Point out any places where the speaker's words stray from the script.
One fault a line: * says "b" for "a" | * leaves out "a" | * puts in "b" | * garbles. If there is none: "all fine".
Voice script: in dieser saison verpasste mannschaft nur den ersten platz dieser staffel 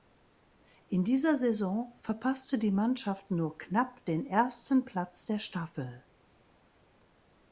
* puts in "die"
* puts in "knapp"
* says "der" for "dieser"